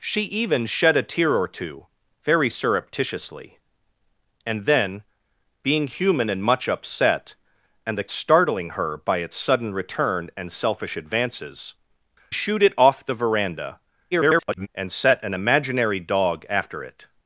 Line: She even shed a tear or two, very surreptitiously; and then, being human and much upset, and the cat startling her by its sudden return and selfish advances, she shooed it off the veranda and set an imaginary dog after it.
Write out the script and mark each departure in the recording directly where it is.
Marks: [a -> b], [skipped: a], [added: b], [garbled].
She even shed a tear or two, very surreptitiously; and then, being human and much upset, and the [skipped: cat] startling her by its sudden return and selfish advances, [skipped: she] shooed it off the veranda [garbled] and set an imaginary dog after it.